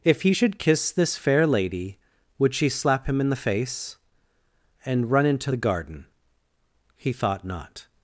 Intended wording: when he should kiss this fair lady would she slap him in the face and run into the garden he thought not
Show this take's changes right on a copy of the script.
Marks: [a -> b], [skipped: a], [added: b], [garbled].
[when -> if] he should kiss this fair lady would she slap him in the face and run into the garden he thought not